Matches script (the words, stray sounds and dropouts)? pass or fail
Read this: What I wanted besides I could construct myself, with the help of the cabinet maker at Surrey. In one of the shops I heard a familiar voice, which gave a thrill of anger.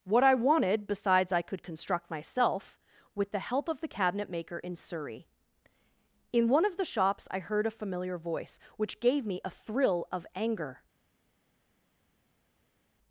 fail